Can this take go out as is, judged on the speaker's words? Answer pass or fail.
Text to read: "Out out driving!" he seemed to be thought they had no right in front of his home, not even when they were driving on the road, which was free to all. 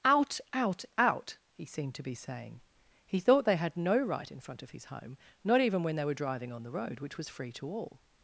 fail